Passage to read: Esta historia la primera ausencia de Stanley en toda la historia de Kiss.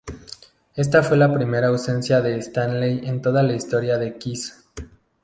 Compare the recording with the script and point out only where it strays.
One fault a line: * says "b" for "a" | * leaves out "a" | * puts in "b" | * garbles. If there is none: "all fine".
* says "fue" for "historia"